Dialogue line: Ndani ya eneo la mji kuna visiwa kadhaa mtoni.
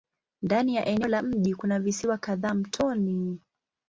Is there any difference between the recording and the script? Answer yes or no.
no